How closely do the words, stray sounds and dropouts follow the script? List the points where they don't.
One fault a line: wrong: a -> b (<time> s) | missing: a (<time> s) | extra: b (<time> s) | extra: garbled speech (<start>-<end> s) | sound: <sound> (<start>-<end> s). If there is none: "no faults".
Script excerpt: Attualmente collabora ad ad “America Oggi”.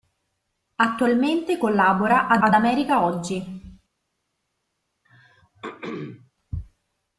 sound: throat clearing (5.0-6.3 s)